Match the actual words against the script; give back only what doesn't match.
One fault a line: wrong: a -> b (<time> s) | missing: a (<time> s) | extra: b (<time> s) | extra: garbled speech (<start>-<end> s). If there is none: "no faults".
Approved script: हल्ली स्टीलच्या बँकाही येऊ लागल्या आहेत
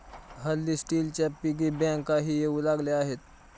extra: पिगी (1.4 s)